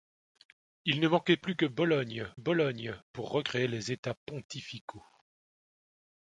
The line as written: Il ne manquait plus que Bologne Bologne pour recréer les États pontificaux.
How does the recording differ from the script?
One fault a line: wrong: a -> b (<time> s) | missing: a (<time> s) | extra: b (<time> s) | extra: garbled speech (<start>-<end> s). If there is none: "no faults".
no faults